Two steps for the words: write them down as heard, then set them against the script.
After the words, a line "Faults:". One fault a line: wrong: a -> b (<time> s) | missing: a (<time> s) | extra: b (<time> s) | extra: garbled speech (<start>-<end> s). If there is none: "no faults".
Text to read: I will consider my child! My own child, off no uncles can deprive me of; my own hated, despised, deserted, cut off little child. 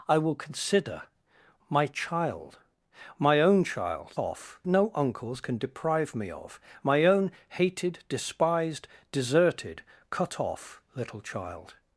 I will consider my child! My own child, off no uncles can deprive me of; my own hated, despised, deserted, cut off little child.
Faults:
no faults